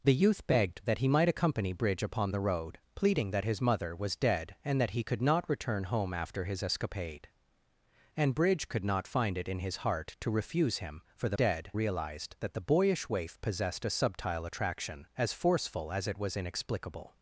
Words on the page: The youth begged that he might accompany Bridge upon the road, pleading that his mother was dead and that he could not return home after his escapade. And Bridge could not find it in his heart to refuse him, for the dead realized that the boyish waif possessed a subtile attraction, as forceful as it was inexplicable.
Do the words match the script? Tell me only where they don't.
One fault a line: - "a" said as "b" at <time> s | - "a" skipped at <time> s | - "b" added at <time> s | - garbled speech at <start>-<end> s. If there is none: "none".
none